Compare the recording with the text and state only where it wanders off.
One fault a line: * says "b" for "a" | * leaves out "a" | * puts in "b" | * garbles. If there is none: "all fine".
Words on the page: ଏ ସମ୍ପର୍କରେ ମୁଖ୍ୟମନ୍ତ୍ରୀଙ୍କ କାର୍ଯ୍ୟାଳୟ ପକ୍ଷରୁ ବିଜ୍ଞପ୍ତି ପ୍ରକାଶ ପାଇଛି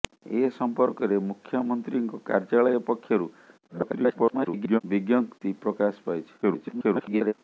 * garbles
* garbles